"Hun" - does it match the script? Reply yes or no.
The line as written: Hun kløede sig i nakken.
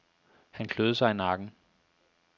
no